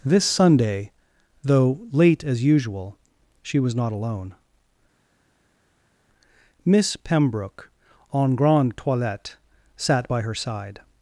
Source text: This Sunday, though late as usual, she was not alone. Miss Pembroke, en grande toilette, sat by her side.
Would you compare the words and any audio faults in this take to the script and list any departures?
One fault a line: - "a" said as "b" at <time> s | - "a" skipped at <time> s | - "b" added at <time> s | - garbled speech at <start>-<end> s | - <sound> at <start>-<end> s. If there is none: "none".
none